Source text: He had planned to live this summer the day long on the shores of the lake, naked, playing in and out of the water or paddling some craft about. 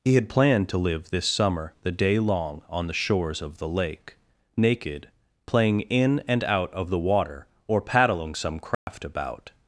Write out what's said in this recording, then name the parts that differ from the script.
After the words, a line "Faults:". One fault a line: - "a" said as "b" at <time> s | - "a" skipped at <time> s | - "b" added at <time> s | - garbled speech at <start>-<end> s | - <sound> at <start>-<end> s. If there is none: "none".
He had planned to live this summer the day long on the shores of the lake, naked, playing in and out of the water or paddling some craft about.
Faults:
- dropout at 8.7-8.9 s